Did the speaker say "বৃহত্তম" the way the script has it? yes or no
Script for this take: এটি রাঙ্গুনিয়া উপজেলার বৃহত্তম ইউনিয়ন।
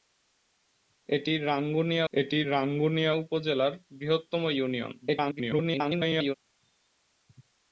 yes